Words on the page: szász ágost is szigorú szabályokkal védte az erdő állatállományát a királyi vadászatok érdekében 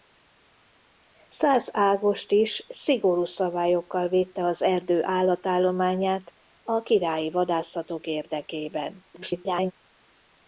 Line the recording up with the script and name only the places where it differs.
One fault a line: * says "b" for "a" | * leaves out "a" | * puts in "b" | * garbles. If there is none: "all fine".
* garbles